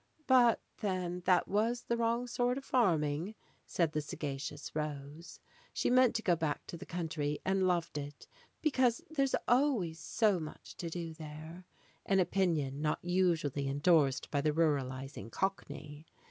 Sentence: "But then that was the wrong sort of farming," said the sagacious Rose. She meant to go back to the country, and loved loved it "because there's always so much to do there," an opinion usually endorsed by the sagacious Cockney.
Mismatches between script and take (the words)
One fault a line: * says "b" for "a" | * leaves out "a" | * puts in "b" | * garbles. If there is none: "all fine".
* leaves out "loved"
* puts in "not"
* says "ruralizing" for "sagacious"